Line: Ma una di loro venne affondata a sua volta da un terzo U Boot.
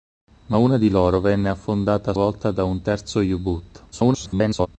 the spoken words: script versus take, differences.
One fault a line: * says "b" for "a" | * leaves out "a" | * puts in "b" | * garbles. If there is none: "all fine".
* leaves out "sua"
* garbles